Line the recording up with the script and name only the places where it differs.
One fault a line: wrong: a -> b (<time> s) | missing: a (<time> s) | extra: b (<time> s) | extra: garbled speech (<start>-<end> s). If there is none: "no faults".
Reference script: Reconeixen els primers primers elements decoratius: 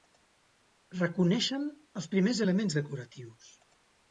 missing: primers (2.5 s)